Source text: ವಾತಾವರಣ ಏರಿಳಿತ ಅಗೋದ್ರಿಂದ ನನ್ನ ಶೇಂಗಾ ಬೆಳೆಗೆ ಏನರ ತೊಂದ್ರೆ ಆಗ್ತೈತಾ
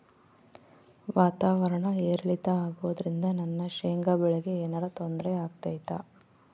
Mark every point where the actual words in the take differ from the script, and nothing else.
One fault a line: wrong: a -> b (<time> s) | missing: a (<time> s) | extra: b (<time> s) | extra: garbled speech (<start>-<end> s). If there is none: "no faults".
no faults